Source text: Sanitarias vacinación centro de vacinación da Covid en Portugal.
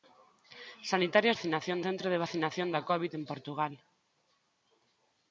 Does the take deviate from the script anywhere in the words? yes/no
no